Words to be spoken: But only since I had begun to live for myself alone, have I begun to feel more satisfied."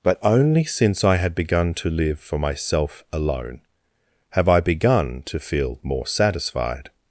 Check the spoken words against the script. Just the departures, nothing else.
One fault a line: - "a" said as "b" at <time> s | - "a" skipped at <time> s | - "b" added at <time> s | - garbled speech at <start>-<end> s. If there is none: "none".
none